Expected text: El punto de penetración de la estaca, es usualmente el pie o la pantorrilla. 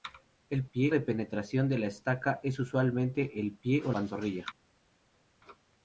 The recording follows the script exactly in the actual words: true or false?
false